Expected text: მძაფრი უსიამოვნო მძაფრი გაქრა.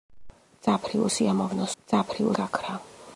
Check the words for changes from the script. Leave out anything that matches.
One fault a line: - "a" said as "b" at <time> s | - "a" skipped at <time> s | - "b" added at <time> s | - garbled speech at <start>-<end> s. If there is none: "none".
none